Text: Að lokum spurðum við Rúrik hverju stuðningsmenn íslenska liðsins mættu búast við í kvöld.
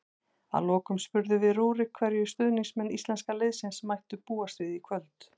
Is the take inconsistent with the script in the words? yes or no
no